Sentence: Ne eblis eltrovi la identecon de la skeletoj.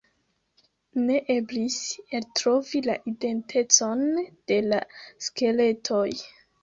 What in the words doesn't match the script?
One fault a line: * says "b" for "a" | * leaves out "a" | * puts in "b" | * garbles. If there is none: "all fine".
all fine